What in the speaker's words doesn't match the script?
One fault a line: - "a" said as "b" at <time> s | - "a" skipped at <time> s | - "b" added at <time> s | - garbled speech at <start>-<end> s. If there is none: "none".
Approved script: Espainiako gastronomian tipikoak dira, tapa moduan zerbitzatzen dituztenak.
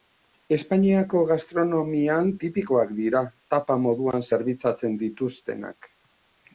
none